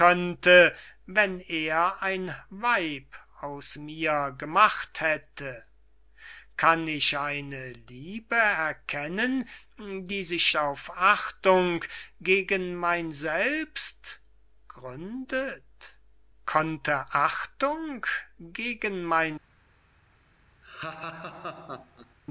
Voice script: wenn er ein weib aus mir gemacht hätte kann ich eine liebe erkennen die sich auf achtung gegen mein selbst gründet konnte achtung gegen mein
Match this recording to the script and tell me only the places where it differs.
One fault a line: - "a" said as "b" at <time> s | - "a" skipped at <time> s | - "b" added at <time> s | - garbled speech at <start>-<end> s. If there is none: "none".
none